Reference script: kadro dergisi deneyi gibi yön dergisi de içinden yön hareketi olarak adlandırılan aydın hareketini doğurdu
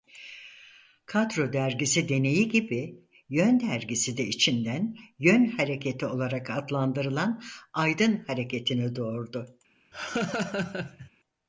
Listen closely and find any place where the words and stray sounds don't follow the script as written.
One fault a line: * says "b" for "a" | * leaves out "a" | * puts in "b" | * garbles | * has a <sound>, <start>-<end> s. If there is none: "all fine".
* has a laugh, 9.9-11.1 s